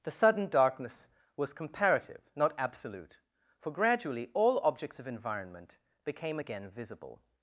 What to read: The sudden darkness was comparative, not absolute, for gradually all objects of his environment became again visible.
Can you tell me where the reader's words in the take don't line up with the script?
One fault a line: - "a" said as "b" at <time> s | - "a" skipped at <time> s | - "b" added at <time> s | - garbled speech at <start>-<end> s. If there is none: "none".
- "his" skipped at 5.1 s